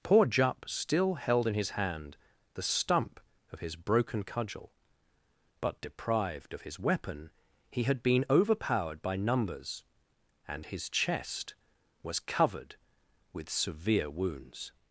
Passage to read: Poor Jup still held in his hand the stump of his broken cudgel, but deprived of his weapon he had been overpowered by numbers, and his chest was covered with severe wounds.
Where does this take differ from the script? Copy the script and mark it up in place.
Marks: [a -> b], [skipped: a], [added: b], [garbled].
Poor Jup still held in his hand the stump of his broken cudgel, but deprived of his weapon he had been overpowered by numbers, and his chest was covered with severe wounds.